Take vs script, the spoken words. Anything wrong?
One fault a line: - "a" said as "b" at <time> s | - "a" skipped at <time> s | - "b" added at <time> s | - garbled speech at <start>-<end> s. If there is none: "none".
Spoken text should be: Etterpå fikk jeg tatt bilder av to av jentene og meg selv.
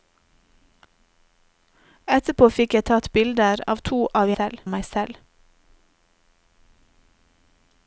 - "jentene" said as "selv" at 4.3 s